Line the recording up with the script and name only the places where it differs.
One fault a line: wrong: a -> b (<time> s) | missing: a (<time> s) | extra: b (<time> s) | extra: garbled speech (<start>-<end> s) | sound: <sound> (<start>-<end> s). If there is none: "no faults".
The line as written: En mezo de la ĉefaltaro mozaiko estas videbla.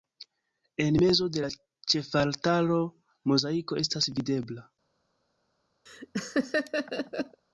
sound: laugh (5.9-7.4 s)